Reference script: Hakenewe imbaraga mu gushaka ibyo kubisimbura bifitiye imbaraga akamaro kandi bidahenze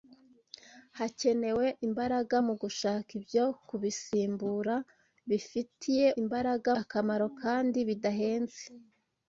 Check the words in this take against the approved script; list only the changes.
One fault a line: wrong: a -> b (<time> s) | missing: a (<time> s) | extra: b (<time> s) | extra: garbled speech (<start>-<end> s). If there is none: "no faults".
no faults